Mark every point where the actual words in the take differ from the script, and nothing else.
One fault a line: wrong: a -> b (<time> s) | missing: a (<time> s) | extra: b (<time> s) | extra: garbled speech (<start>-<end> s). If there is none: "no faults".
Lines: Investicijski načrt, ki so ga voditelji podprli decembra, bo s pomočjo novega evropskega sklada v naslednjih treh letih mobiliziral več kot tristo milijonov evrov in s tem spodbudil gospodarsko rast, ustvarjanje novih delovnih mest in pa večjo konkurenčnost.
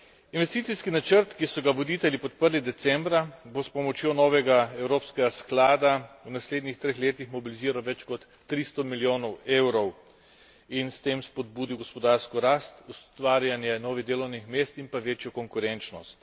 no faults